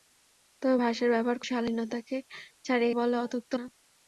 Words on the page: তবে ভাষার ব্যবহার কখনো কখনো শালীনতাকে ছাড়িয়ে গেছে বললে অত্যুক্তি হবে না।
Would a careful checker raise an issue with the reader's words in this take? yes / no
yes